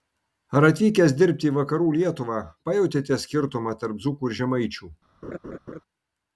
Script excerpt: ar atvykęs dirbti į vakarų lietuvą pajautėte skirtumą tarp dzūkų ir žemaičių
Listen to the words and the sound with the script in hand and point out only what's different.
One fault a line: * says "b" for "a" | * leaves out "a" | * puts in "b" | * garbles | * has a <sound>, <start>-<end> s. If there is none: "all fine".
* has a laugh, 5.2-5.8 s